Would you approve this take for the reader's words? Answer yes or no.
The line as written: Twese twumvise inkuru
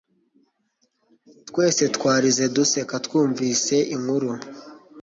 no